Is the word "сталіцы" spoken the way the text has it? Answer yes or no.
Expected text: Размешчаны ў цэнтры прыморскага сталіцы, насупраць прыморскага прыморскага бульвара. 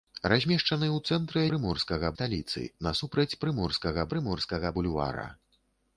yes